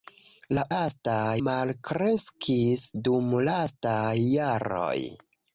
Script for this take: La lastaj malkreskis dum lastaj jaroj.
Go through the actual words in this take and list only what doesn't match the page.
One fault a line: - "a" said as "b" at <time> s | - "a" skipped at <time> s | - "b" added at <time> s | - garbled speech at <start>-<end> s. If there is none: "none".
none